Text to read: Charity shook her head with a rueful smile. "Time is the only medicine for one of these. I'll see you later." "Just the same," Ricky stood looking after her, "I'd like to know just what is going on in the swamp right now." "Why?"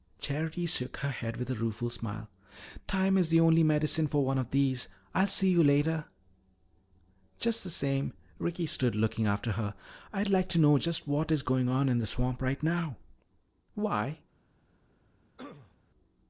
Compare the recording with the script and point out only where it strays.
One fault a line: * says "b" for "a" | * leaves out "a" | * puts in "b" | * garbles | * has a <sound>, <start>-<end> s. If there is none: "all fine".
* has a throat clearing, 15.4-15.8 s